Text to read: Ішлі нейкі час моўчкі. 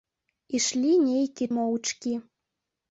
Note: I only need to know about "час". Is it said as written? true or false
false